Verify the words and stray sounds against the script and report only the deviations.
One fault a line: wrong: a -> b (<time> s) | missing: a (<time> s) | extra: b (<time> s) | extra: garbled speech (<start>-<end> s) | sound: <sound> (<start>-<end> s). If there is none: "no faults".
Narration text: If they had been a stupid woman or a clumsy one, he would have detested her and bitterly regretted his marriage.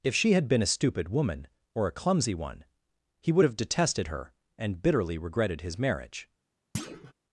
wrong: they -> she (0.1 s)
sound: thud (6.7-7.1 s)